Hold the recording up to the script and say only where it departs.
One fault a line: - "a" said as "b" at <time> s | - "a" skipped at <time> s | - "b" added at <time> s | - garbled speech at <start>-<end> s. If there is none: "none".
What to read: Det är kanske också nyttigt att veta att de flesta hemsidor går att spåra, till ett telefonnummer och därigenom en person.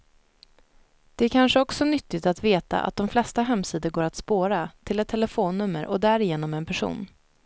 none